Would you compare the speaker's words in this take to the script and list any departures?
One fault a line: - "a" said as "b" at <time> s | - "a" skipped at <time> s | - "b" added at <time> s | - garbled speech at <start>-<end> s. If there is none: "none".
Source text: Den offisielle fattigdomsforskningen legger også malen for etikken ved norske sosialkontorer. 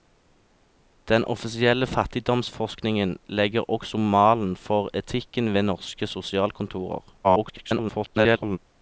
- garbled speech at 7.2-8.6 s